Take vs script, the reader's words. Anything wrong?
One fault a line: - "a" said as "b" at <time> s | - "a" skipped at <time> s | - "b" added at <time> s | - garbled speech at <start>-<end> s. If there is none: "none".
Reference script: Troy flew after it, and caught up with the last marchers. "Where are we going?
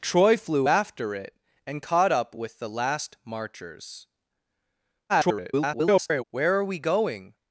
- garbled speech at 5.1-6.2 s